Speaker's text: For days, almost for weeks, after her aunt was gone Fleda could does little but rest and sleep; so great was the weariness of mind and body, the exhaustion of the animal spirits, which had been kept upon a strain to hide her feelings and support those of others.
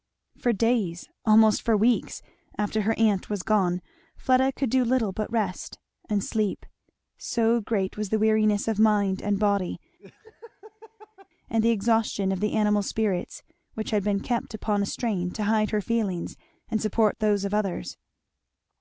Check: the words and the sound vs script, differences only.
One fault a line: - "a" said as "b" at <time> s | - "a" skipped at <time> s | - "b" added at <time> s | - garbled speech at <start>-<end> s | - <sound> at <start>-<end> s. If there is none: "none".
- "does" said as "do" at 4.7 s
- laugh at 10.0-11.3 s
- "and" added at 11.5 s